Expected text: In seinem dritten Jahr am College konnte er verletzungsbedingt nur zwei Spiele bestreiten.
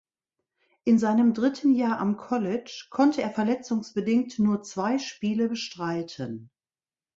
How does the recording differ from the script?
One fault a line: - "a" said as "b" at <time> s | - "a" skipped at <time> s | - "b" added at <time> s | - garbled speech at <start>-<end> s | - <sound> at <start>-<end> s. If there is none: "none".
none